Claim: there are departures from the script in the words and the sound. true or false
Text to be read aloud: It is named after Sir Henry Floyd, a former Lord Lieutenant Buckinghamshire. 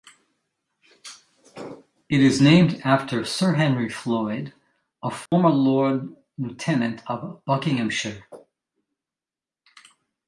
true